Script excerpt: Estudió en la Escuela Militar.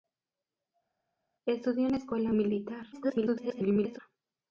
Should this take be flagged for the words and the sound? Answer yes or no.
yes